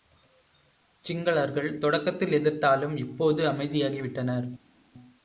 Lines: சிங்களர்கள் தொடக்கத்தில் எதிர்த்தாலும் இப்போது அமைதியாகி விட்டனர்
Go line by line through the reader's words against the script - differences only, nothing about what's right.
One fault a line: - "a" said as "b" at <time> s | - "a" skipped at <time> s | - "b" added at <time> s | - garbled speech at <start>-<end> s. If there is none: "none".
none